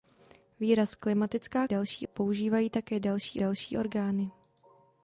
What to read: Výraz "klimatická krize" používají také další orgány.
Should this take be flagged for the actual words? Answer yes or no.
yes